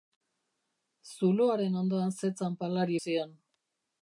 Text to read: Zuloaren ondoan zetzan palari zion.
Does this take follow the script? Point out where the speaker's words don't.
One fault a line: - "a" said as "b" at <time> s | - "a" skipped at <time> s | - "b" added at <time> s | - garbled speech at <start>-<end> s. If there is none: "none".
none